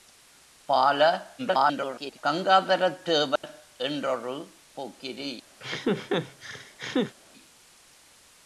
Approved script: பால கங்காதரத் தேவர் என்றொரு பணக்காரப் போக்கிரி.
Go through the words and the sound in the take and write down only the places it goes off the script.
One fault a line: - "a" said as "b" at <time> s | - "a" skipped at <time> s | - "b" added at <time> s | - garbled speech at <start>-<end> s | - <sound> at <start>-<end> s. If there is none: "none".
- garbled speech at 1.4-2.2 s
- dropout at 3.4-3.4 s
- "பணக்காரப்" skipped at 4.4 s
- laugh at 5.6-7.1 s